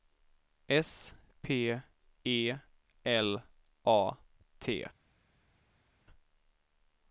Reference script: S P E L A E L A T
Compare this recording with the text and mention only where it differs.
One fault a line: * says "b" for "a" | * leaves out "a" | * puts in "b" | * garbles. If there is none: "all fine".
* leaves out "E L A"